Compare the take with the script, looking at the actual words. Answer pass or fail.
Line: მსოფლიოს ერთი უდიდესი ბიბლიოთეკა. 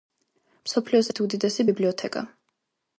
pass